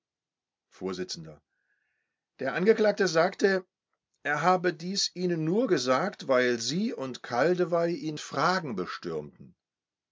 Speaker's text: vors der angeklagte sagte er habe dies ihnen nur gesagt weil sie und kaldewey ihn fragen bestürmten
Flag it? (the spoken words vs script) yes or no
no